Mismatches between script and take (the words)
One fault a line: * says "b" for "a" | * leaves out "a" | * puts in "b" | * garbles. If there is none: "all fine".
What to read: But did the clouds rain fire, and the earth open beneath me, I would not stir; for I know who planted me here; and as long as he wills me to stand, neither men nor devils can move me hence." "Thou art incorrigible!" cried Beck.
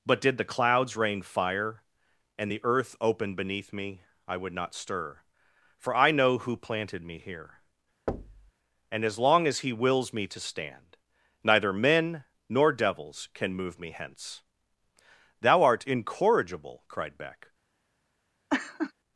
all fine